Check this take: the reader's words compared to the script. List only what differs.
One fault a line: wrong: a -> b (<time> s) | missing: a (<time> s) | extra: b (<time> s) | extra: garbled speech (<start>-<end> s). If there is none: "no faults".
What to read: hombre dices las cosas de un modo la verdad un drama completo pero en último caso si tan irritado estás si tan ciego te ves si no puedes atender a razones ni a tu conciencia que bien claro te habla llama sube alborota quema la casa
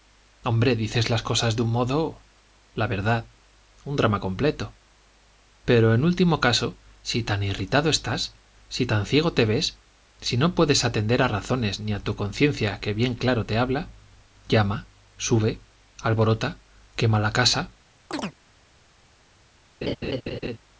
no faults